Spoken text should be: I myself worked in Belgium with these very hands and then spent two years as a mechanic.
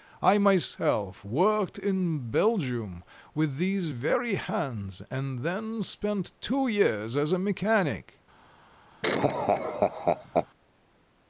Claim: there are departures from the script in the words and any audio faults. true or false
true